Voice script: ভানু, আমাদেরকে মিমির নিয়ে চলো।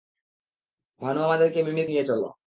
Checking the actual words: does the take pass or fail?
pass